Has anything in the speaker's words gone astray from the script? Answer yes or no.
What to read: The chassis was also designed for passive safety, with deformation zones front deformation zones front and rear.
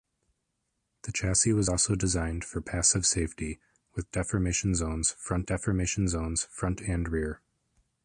no